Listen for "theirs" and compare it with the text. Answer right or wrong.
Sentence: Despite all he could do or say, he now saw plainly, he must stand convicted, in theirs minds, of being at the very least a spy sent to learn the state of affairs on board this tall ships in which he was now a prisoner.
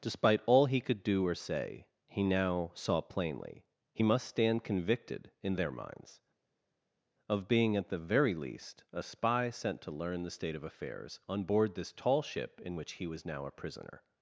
wrong